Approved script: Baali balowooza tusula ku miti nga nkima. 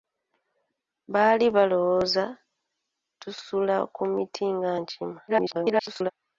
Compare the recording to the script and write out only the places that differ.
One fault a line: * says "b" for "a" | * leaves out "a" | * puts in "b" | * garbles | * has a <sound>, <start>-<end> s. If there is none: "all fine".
* garbles